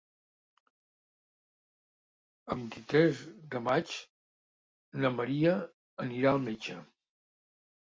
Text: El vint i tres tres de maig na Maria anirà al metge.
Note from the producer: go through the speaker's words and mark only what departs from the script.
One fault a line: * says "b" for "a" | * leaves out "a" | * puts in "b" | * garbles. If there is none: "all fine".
* leaves out "tres"